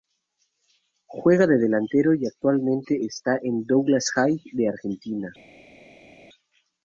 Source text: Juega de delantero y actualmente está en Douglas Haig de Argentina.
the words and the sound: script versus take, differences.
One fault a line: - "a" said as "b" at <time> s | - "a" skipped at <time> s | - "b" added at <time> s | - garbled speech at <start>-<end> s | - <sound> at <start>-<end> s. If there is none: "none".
none